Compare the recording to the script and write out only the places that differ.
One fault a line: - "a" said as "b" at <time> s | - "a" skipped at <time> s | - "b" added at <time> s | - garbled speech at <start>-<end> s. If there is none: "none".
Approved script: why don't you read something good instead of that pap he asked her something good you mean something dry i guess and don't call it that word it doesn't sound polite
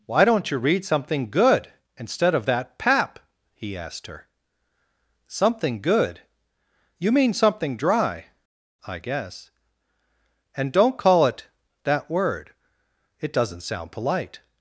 none